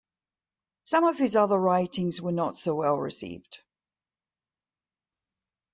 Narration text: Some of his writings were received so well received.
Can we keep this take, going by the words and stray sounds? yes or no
no